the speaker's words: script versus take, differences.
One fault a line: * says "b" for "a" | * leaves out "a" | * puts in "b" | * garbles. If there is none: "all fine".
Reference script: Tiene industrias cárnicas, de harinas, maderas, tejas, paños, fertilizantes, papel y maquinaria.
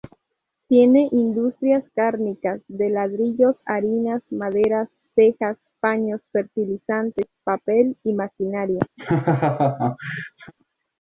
* puts in "ladrillos"